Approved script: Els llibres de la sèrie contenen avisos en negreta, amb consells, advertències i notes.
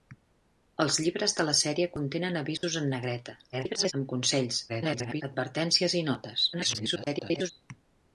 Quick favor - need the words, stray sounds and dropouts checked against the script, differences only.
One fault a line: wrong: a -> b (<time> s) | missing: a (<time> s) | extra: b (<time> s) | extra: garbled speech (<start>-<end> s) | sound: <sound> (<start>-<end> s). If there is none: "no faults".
sound: dropout (2.6-2.6 s)
extra: garbled speech (3.5-3.9 s)
extra: garbled speech (4.7-5.2 s)
extra: garbled speech (6.5-7.5 s)